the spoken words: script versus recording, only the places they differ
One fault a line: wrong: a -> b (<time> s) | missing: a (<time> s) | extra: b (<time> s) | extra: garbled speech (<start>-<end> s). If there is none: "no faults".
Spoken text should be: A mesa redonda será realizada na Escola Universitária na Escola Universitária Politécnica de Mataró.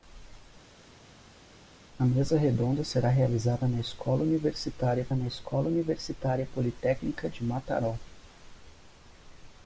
no faults